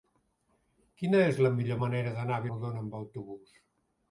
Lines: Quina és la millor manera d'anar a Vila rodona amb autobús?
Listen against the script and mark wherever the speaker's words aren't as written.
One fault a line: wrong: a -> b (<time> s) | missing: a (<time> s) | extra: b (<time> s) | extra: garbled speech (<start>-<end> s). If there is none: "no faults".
missing: Vila (2.5 s)